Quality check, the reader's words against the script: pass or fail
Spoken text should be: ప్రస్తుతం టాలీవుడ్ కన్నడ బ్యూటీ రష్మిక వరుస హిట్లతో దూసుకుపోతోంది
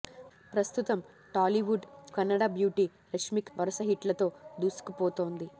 pass